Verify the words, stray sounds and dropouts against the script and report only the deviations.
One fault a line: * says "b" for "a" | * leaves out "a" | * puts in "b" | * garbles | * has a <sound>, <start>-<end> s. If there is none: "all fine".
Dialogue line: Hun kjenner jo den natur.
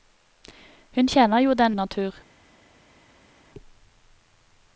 all fine